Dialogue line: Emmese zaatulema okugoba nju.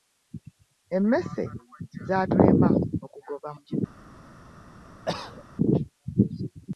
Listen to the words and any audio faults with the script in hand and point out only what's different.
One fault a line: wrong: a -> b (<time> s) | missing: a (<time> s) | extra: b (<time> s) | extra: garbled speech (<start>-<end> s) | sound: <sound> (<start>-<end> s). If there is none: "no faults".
sound: cough (5.1-5.5 s)